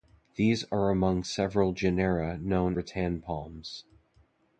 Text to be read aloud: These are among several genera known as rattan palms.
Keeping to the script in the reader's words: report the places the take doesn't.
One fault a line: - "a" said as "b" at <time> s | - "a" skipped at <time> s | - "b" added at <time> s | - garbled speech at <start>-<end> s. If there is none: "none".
- "as" skipped at 2.8 s